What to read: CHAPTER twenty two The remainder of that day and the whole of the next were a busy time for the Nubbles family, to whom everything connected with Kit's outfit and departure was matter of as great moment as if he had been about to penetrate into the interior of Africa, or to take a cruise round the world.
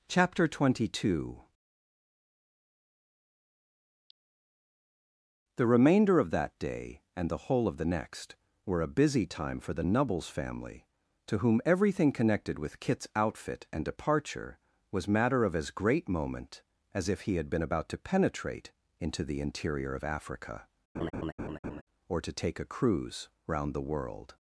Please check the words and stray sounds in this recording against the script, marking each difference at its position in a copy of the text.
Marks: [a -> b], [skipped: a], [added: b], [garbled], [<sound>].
CHAPTER twenty two The remainder of that day and the whole of the next were a busy time for the Nubbles family, to whom everything connected with Kit's outfit and departure was matter of as great moment as if he had been about to penetrate into the interior of Africa, [laugh] or to take a cruise round the world.